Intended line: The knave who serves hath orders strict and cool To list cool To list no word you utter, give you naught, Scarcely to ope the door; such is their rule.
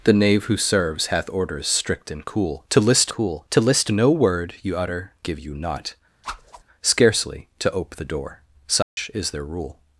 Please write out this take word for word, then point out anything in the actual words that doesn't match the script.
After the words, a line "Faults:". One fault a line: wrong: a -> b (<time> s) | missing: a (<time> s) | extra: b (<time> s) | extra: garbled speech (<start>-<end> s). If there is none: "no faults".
The knave who serves hath orders strict and cool To list cool To list no word you utter, give you naught, Scarcely to ope the door; such is their rule.
Faults:
no faults